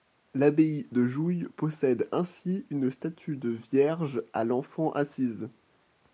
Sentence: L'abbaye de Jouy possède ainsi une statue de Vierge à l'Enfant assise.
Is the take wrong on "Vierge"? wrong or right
right